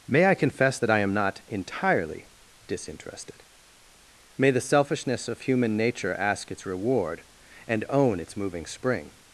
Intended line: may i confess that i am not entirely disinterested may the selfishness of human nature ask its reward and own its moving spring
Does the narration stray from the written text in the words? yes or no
no